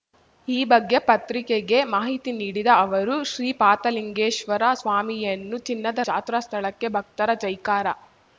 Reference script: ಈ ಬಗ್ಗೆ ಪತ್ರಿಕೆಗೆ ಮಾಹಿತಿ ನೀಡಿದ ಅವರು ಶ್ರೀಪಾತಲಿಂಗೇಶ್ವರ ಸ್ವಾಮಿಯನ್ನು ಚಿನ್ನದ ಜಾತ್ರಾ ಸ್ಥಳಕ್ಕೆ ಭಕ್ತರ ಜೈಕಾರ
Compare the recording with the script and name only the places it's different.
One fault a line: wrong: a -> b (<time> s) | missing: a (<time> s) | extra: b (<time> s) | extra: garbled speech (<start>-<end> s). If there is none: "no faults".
no faults